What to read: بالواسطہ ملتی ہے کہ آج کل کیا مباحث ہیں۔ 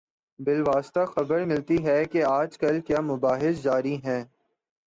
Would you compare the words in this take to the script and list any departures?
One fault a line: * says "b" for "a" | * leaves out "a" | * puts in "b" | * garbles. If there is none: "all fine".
* puts in "خبر"
* puts in "جاری"